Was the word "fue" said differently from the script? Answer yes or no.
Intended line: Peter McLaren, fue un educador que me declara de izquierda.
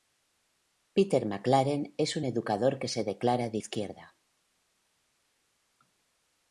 yes